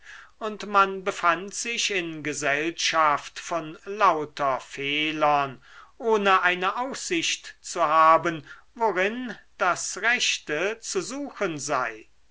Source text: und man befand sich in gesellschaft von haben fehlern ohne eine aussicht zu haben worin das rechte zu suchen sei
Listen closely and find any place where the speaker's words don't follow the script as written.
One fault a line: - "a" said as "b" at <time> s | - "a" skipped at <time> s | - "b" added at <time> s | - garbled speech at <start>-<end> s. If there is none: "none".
- "haben" said as "lauter" at 3.8 s